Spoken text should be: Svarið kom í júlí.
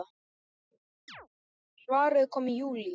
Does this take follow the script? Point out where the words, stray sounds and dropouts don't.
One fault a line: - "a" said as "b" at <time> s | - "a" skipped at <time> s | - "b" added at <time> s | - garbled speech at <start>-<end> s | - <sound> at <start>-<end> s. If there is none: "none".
- chirp at 1.1-1.3 s